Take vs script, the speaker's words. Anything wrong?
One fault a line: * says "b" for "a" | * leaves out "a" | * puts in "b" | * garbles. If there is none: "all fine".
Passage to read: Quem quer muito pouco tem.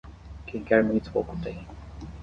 all fine